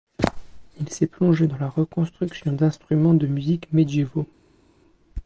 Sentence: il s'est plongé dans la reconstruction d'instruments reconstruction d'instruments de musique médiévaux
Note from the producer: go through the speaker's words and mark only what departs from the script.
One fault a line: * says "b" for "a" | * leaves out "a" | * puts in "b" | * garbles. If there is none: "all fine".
* leaves out "reconstruction d'instruments"